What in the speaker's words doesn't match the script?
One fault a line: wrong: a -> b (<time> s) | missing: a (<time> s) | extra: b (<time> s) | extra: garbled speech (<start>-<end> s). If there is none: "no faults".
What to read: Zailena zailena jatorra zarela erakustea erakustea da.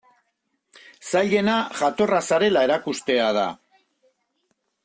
missing: zailena (1.6 s)
missing: erakustea (3.3 s)